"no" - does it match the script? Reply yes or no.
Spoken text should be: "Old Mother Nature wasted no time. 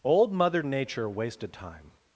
no